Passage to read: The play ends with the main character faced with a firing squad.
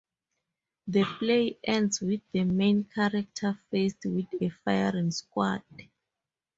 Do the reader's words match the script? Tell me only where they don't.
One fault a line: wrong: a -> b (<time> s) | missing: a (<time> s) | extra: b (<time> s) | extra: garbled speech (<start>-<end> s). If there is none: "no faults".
no faults